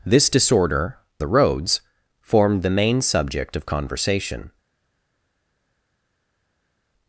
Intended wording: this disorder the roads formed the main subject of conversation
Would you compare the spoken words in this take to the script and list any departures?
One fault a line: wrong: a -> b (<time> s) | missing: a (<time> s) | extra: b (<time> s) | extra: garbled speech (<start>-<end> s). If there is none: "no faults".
no faults